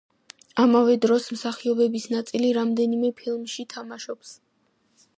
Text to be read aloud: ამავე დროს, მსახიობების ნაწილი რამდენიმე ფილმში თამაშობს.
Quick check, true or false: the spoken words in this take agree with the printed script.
true